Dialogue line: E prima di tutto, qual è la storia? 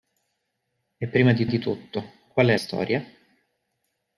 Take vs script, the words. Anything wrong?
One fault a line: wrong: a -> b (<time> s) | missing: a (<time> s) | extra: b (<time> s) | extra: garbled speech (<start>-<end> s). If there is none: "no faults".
extra: di (1.4 s)
missing: la (2.6 s)